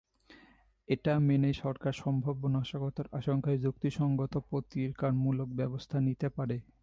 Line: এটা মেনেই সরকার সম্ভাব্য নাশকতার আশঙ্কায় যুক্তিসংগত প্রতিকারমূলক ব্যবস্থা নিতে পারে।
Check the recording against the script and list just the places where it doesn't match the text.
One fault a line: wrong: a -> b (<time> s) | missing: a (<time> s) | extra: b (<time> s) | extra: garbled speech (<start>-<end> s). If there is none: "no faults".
no faults